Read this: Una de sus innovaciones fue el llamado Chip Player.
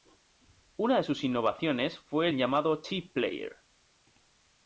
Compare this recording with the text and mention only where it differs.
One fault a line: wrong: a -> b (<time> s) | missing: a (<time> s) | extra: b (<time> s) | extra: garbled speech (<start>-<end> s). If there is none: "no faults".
no faults